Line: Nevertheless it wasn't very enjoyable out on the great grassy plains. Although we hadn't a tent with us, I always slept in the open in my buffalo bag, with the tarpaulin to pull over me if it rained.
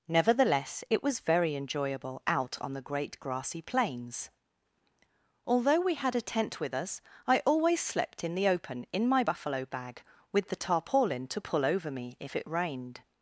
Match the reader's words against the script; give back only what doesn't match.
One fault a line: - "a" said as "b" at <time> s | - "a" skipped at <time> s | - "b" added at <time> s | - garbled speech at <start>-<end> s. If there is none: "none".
- "wasn't" said as "was" at 1.0 s
- "hadn't" said as "had" at 6.0 s